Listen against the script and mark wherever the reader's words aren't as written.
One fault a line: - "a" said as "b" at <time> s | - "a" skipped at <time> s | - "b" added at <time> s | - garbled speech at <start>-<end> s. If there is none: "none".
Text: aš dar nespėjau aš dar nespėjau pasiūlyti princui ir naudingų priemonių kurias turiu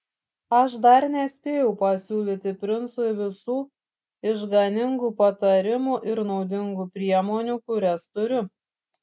- "aš dar nespėjau pasiūlyti princui" said as "pasiūlyti princui visų išganingų patarimų" at 1.8 s